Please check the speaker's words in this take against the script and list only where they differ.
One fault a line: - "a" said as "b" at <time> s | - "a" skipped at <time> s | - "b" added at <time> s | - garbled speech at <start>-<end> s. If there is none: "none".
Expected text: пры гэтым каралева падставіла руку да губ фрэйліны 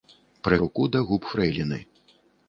- "гэтым каралева падставіла" skipped at 0.6 s